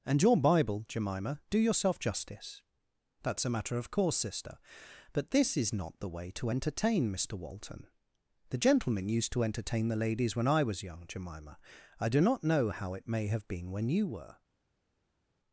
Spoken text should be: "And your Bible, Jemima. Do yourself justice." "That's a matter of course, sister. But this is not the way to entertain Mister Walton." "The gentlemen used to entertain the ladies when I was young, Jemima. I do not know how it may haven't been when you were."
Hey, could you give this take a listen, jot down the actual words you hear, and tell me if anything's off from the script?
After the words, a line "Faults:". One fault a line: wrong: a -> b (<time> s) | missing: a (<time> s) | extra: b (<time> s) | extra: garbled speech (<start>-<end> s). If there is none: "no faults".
"And your Bible, Jemima. Do yourself justice." "That's a matter of course, sister. But this is not the way to entertain Mister Walton." "The gentlemen used to entertain the ladies when I was young, Jemima. I do not know how it may have been when you were."
Faults:
wrong: haven't -> have (13.3 s)